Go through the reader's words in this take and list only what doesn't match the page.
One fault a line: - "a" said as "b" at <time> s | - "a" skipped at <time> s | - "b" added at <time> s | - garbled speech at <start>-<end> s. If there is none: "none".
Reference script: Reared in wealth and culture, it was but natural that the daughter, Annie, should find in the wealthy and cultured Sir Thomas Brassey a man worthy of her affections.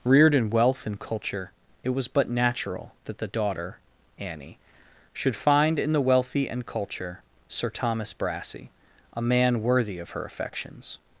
- "cultured" said as "culture" at 6.7 s